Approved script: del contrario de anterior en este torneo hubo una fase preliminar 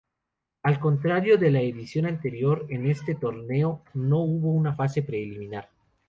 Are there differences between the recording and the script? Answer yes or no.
yes